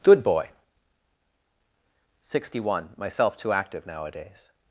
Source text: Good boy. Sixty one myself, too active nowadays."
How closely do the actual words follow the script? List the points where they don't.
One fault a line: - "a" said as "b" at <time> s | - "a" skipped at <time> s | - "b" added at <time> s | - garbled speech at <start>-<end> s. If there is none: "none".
none